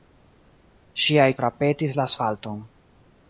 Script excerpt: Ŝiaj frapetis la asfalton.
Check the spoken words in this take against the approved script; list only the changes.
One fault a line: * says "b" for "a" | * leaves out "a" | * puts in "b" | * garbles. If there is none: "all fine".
all fine